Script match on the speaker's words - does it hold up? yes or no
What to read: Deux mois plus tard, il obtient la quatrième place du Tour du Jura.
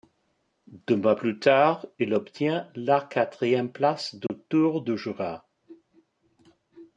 yes